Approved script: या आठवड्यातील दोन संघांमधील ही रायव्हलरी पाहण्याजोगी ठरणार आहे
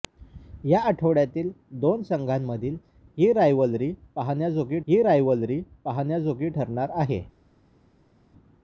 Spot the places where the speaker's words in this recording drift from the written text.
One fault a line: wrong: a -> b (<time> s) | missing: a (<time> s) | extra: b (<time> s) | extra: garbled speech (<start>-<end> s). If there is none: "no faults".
extra: ही रायव्हलरी पाहण्याजोगी (4.9 s)